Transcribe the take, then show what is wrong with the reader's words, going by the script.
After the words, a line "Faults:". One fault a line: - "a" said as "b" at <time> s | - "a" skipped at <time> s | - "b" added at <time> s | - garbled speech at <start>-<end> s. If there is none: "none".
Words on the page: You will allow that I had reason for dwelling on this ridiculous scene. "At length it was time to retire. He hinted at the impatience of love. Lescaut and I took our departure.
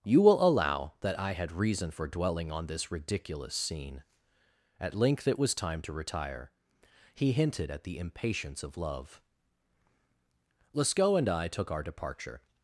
You will allow that I had reason for dwelling on this ridiculous scene. "At length it was time to retire. He hinted at the impatience of love. Lescaut and I took our departure.
Faults:
none